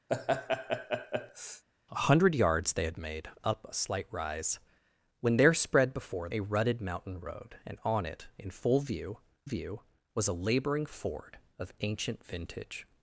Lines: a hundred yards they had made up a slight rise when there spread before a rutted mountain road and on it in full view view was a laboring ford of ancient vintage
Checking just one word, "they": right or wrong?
right